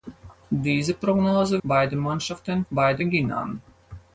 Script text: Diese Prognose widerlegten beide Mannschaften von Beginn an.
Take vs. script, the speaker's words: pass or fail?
fail